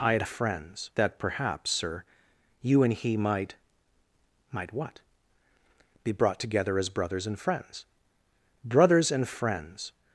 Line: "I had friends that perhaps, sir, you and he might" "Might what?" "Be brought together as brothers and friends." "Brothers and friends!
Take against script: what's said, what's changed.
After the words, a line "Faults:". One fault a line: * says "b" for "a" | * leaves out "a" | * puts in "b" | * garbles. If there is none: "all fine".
"I had friends that perhaps, sir, you and he might" "Might what?" "Be brought together as brothers and friends." "Brothers and friends!
Faults:
all fine